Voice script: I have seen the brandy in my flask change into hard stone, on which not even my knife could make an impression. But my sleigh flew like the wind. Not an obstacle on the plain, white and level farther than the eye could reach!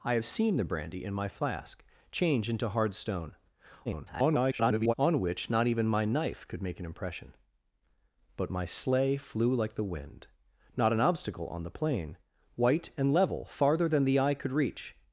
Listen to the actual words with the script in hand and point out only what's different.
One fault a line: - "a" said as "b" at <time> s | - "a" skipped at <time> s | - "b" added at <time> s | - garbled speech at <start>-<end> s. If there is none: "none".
- garbled speech at 3.8-4.9 s